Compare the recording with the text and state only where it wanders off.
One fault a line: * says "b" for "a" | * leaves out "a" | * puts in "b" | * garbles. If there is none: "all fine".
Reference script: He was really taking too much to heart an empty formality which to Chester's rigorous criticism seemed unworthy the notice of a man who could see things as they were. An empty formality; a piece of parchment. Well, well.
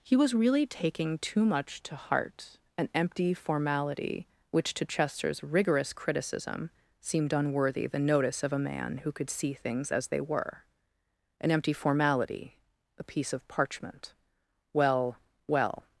all fine